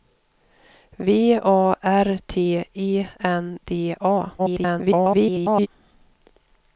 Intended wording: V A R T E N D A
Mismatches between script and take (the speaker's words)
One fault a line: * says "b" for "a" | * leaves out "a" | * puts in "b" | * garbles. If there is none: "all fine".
* garbles